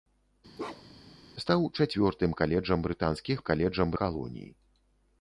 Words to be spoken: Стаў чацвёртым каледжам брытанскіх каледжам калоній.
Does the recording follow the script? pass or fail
pass